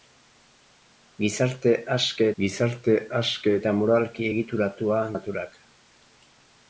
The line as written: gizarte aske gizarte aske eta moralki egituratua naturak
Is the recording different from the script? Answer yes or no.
no